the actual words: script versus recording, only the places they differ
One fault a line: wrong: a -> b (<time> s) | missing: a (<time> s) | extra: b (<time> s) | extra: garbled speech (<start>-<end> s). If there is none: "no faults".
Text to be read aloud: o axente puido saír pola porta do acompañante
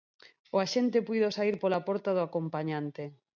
no faults